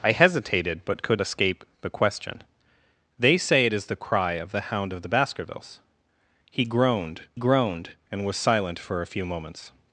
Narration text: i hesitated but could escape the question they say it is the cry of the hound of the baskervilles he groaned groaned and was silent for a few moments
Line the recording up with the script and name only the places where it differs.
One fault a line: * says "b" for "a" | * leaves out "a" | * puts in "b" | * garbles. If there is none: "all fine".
all fine